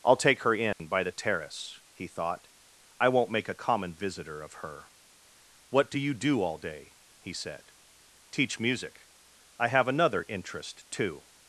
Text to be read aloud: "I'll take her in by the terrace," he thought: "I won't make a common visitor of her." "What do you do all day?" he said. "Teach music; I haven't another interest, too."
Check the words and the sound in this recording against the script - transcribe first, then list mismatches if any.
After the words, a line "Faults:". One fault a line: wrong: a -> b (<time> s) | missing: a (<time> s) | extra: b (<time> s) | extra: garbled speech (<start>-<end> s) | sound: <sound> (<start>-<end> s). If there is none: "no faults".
"I'll take her in by the terrace," he thought: "I won't make a common visitor of her." "What do you do all day?" he said. "Teach music; I have another interest, too."
Faults:
sound: dropout (0.7-0.8 s)
wrong: haven't -> have (9.7 s)